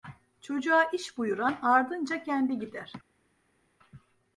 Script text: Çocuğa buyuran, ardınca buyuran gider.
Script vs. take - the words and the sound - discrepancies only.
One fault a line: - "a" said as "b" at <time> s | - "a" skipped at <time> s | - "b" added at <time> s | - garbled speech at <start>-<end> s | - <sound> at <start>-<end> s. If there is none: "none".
- "iş" added at 0.8 s
- "buyuran" said as "kendi" at 2.2 s